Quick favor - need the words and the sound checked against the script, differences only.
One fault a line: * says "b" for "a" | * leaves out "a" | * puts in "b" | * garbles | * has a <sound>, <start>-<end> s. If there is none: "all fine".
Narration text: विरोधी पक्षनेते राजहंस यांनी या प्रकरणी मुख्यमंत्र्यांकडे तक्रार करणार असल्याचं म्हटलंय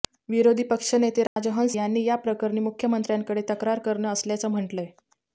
* has a dropout, 1.3-1.4 s